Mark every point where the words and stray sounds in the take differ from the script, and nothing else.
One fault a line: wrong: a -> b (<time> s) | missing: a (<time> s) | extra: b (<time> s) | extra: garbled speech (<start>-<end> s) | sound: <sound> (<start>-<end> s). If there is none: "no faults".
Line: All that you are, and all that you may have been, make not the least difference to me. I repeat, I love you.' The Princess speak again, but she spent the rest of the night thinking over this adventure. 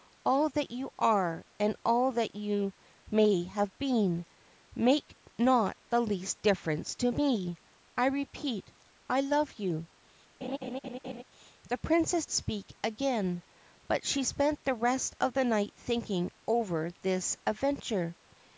sound: laugh (10.4-11.2 s)